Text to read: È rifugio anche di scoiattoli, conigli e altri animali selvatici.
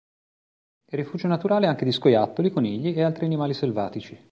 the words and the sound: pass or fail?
fail